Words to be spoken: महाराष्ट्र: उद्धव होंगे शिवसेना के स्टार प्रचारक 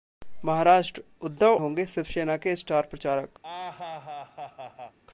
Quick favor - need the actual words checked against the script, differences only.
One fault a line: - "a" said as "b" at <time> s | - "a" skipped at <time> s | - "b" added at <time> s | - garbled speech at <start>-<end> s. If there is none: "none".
none